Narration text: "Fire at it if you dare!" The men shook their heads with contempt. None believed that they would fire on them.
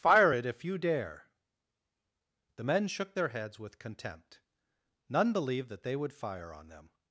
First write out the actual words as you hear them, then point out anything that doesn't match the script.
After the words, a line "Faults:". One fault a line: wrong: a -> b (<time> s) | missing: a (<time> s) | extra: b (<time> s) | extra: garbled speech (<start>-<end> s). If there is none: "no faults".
"Fire it if you dare!" The men shook their heads with contempt. None believed that they would fire on them.
Faults:
missing: at (0.3 s)